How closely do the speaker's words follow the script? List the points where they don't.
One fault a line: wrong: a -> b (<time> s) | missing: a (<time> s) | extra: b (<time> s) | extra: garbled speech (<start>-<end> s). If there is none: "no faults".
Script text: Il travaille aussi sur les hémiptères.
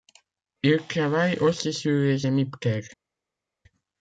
no faults